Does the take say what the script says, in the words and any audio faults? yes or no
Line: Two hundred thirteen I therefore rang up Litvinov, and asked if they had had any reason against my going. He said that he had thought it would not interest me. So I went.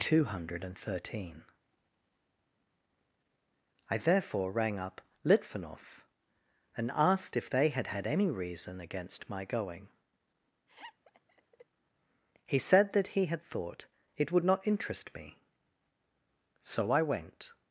no